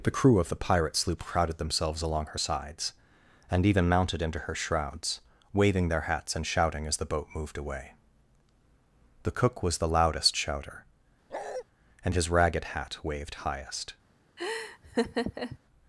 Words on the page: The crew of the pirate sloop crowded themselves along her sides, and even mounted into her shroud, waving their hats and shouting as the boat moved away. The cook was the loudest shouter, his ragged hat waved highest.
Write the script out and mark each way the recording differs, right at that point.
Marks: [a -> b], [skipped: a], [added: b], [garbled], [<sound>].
The crew of the pirate sloop crowded themselves along her sides, and even mounted into her [shroud, -> shrouds] waving their hats and shouting as the boat moved away. The cook was the loudest shouter, [bark] [added: and] his ragged hat waved highest. [laugh]